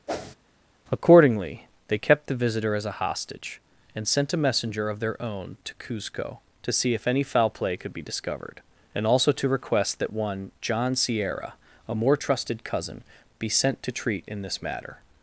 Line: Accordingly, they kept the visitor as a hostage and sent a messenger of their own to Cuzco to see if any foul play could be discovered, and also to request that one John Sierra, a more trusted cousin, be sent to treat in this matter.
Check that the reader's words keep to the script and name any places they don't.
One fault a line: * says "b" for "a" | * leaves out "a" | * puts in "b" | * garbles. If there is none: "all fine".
all fine